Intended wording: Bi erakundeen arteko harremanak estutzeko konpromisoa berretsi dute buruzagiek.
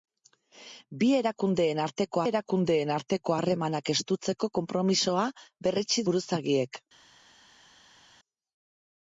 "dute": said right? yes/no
no